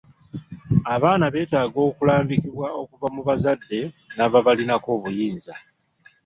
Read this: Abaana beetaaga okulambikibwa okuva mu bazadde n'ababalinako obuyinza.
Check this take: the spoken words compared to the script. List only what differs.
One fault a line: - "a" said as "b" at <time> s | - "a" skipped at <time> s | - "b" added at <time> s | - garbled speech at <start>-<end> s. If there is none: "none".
none